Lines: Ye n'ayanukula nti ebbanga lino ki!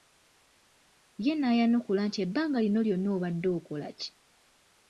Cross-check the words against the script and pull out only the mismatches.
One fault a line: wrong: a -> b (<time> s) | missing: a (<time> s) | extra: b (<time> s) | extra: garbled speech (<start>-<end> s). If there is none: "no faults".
extra: lyonna obadde okola (2.9 s)